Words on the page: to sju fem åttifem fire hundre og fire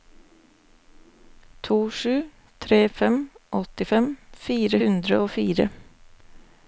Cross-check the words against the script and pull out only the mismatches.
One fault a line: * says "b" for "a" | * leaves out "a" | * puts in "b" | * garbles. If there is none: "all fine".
* puts in "tre"